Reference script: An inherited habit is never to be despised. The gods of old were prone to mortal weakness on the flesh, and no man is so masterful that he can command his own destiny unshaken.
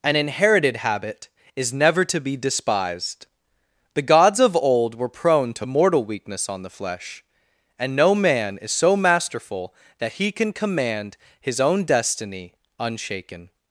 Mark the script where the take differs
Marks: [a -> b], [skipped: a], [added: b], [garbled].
An inherited habit is never to be despised. The gods of old were prone to mortal weakness on the flesh, and no man is so masterful that he can command his own destiny unshaken.